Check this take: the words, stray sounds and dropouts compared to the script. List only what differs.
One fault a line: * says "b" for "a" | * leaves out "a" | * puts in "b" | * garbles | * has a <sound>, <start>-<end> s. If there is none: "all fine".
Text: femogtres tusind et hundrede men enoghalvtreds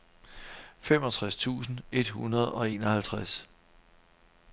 * says "og" for "men"